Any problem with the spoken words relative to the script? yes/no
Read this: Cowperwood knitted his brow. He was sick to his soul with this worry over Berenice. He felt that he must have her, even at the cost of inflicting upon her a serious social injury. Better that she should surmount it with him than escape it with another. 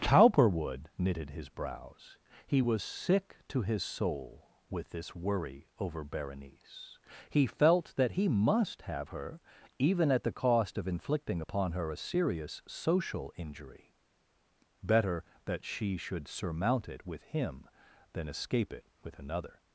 yes